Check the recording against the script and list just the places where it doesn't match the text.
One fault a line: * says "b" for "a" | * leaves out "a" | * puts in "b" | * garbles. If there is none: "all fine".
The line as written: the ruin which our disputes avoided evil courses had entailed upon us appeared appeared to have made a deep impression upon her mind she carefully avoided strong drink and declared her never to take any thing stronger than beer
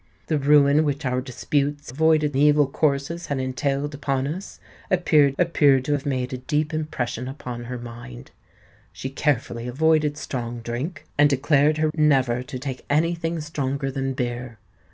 all fine